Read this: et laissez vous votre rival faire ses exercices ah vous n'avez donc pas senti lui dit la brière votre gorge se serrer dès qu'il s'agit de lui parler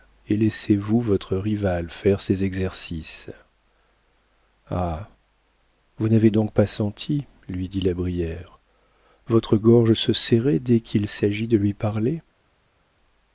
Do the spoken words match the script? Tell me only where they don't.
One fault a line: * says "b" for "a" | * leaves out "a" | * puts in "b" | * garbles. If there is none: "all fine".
all fine